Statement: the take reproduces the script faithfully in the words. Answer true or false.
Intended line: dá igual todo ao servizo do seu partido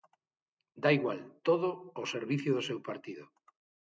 true